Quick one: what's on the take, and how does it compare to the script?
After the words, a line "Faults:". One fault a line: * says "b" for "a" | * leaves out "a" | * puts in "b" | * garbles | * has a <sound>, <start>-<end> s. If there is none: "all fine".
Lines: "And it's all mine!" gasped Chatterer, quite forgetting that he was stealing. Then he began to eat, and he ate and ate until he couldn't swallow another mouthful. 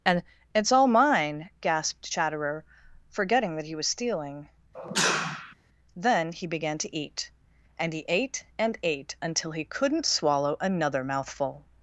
"And it's all mine!" gasped Chatterer, forgetting that he was stealing. Then he began to eat, and he ate and ate until he couldn't swallow another mouthful.
Faults:
* leaves out "quite"
* has a sneeze, 4.7-5.5 s